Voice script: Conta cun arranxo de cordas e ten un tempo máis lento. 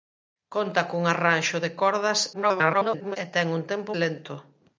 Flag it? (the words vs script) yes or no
yes